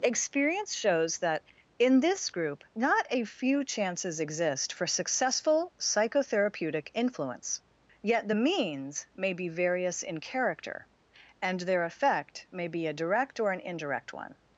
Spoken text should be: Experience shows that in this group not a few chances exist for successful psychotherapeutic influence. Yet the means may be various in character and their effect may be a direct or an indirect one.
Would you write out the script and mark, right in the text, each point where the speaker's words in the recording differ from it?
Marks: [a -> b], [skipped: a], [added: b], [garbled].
Experience shows that in this group not a few chances exist for successful psychotherapeutic influence. Yet the means may be various in character and their effect may be a direct or an indirect one.